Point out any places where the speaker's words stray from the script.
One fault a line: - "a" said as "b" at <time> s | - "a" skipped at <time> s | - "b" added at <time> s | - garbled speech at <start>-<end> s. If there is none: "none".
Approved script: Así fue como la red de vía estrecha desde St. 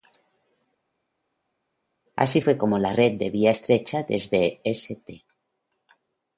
none